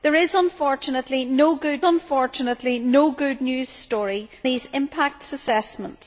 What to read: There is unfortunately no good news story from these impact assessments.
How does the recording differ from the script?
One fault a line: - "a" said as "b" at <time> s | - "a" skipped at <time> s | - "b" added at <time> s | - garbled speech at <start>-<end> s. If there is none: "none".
- "unfortunately no good" added at 1.8 s
- "from" skipped at 4.3 s